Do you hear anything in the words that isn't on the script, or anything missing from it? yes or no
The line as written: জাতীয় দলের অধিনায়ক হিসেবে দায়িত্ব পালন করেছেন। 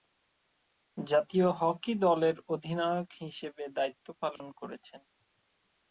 yes